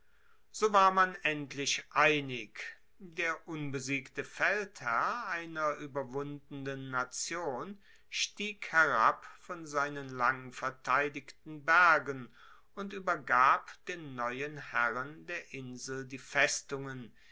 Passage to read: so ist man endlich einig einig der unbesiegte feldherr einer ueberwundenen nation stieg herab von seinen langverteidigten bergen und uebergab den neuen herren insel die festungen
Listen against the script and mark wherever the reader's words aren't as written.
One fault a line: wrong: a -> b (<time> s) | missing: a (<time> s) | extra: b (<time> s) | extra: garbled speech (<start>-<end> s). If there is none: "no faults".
wrong: ist -> war (0.7 s)
missing: einig (2.6 s)
extra: der (15.3 s)